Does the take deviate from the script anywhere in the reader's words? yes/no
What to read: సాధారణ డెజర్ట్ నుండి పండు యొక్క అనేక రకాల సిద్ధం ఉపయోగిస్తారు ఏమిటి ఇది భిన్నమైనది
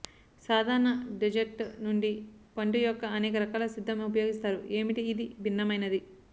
no